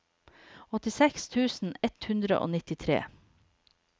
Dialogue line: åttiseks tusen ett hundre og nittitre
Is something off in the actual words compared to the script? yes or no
no